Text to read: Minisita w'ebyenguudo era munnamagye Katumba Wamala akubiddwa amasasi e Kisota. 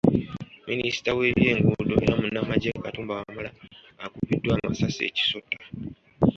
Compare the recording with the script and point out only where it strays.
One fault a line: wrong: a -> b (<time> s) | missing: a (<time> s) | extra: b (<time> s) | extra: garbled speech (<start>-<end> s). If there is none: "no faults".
no faults